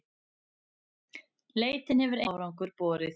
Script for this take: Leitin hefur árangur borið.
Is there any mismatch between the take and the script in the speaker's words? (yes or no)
no